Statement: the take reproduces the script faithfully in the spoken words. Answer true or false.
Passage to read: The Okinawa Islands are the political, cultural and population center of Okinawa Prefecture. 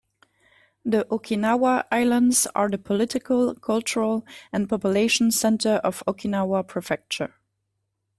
true